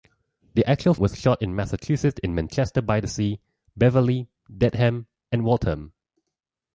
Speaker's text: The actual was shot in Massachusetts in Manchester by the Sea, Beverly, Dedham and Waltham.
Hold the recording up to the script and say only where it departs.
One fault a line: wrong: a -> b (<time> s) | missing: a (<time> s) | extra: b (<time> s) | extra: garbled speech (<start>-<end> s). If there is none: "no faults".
no faults